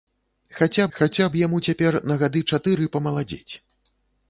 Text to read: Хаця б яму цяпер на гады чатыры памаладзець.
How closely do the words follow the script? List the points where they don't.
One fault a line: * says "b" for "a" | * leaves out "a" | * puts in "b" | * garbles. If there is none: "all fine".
* puts in "хаця"